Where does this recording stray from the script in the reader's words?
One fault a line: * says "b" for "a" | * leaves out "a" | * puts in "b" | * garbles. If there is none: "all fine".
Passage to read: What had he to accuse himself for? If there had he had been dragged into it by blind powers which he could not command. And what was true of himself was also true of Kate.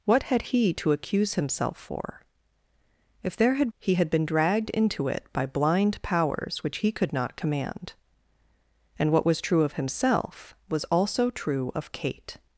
all fine